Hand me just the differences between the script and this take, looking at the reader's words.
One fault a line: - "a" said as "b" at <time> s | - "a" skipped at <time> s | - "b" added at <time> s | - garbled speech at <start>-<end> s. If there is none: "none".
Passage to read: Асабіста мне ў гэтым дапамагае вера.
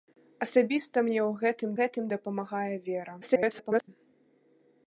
- "гэтым" added at 1.8 s
- garbled speech at 3.2-3.9 s